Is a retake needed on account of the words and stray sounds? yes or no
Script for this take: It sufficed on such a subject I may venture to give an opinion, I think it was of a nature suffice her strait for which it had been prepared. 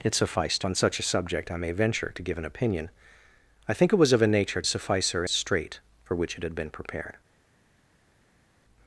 no